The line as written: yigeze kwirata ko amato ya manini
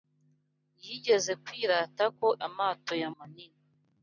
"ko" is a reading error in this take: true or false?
false